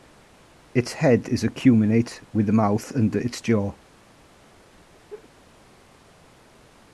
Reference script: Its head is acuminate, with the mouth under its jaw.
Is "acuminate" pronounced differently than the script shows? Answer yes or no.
no